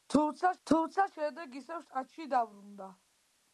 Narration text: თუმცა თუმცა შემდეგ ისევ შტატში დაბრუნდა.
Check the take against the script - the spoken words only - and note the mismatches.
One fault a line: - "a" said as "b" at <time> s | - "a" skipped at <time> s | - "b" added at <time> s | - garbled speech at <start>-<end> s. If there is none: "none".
none